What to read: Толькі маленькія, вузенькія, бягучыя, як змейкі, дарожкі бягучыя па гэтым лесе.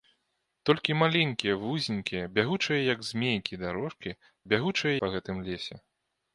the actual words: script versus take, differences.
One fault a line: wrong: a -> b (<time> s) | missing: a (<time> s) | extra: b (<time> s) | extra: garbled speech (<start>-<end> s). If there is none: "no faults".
no faults